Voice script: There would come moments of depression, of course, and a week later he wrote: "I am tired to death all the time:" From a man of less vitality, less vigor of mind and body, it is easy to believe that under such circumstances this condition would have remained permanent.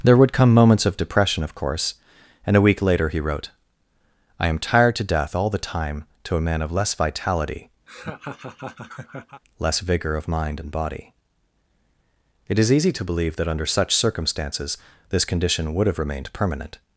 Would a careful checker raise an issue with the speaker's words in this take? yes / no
yes